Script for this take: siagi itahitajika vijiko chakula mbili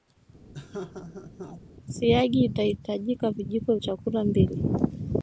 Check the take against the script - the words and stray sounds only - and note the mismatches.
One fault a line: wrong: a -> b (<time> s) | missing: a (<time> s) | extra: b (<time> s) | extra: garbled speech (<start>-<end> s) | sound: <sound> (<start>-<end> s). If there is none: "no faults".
sound: laugh (0.5-1.6 s)